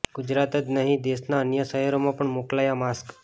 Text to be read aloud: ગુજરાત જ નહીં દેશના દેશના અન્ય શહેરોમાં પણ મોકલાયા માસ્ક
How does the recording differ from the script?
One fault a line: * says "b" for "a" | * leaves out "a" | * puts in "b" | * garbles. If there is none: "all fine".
* leaves out "દેશના"